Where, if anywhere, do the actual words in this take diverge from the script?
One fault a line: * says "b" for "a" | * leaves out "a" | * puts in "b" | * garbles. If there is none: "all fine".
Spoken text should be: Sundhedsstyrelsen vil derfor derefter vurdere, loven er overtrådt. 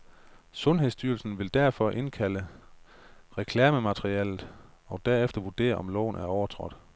* puts in "indkalde reklamematerialet og"
* puts in "om"